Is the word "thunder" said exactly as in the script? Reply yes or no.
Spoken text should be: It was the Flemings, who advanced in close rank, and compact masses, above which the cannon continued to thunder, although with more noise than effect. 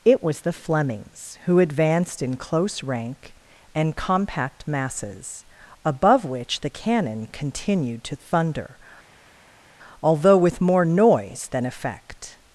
yes